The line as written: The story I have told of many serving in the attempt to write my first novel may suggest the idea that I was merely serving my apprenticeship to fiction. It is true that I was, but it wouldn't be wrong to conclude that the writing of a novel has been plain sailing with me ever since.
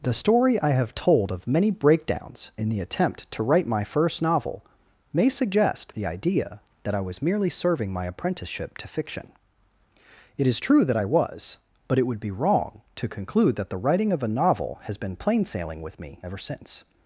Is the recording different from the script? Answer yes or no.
yes